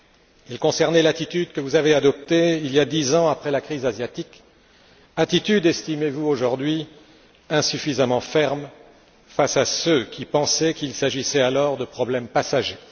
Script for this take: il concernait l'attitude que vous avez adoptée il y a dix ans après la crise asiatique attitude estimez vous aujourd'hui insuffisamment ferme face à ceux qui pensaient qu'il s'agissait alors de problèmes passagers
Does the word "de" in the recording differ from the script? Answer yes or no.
no